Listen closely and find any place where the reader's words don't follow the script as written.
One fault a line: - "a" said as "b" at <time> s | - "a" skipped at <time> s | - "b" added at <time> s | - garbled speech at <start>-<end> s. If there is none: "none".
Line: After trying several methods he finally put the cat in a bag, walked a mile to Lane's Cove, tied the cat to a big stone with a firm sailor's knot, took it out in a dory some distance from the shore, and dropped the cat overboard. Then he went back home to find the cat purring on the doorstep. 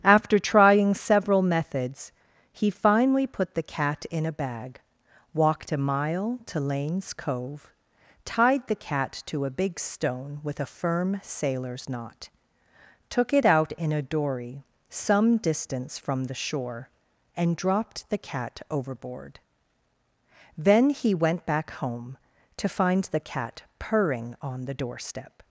none